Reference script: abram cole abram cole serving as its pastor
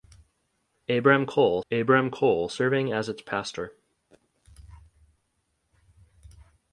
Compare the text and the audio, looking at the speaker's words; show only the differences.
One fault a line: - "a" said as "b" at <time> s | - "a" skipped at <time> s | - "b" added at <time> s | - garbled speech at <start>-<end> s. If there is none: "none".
none